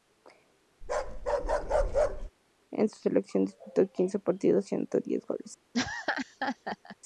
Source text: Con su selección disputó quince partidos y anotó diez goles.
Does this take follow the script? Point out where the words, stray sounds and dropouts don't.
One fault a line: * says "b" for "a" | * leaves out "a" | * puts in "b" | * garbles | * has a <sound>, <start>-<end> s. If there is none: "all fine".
* has a bark, 0.8-2.3 s
* has a laugh, 5.7-7.0 s